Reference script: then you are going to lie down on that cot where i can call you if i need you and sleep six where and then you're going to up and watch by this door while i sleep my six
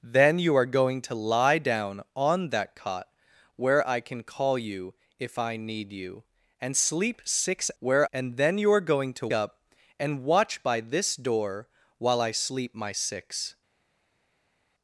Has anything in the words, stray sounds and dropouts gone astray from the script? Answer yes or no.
no